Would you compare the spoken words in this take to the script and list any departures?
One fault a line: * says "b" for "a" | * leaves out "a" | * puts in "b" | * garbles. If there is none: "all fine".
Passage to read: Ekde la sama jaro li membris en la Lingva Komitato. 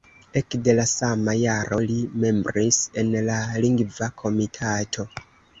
all fine